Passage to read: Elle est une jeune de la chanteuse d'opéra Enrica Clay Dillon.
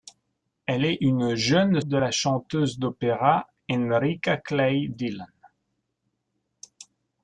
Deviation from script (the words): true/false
false